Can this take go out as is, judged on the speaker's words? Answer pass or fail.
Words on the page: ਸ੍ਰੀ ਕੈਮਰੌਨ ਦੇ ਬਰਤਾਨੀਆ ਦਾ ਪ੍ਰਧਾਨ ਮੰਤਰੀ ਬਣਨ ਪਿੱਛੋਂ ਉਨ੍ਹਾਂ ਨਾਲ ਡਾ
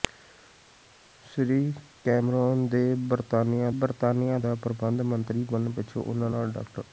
fail